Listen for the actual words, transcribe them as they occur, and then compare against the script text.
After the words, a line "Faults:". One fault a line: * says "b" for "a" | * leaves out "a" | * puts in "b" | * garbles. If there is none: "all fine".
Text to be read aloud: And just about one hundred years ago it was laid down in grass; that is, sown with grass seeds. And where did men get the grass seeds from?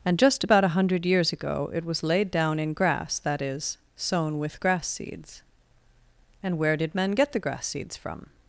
And just about a hundred years ago it was laid down in grass; that is, sown with grass seeds. And where did men get the grass seeds from?
Faults:
* says "a" for "one"